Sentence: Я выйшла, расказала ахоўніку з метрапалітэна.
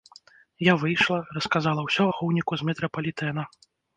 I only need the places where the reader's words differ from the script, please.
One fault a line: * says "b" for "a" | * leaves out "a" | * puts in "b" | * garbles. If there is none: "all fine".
* puts in "ўсё"